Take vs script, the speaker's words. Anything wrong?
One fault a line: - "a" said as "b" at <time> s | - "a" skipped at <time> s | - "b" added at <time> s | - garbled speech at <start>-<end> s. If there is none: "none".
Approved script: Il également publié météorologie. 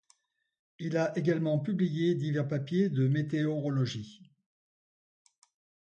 - "a" added at 1.0 s
- "divers papiers de" added at 2.1 s